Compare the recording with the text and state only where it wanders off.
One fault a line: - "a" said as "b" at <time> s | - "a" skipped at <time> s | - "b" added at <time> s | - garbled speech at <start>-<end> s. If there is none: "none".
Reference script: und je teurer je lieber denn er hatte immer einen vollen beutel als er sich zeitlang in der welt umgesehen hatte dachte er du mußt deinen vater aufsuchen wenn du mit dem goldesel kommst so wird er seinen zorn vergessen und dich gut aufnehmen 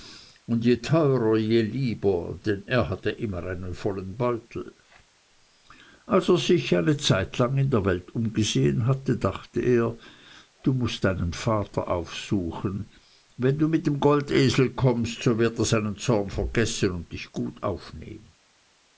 - "eine" added at 6.8 s